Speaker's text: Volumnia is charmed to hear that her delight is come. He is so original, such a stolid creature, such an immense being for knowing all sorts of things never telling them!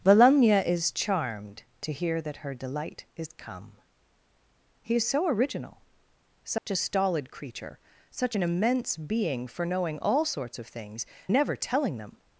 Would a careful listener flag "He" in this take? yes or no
no